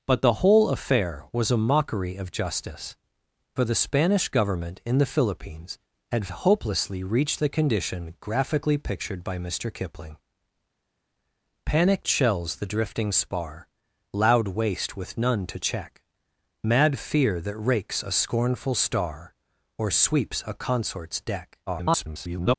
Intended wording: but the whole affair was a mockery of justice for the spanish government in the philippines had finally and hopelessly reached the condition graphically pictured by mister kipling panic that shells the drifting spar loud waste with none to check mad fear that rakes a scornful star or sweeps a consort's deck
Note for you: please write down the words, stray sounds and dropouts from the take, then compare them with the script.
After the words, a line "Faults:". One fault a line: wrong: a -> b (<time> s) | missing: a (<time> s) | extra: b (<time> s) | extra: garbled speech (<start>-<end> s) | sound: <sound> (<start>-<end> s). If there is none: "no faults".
but the whole affair was a mockery of justice for the spanish government in the philippines had hopelessly reached the condition graphically pictured by mister kipling panic shells the drifting spar loud waste with none to check mad fear that rakes a scornful star or sweeps a consort's deck [garbled]
Faults:
missing: finally and (6.3 s)
missing: that (12.0 s)
extra: garbled speech (21.7-22.6 s)